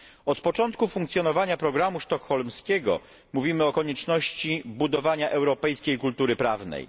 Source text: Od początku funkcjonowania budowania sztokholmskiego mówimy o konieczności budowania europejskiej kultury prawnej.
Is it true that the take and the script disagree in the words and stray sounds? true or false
true